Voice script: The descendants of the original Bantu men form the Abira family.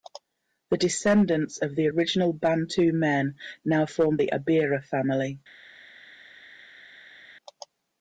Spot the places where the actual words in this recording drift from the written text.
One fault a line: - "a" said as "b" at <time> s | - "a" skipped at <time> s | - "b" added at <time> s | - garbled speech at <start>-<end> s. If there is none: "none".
- "now" added at 3.7 s